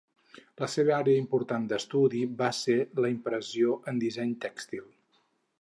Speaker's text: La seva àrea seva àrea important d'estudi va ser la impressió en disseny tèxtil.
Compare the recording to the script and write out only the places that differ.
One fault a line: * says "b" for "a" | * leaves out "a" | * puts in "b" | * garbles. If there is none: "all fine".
* leaves out "seva àrea"